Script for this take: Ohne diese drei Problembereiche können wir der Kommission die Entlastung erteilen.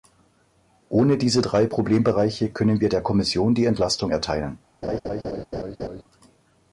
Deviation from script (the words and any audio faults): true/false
true